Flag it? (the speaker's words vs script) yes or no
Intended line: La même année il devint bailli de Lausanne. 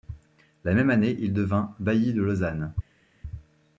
no